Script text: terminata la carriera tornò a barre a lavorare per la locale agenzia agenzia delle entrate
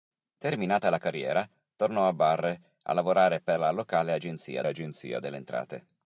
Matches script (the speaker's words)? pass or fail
pass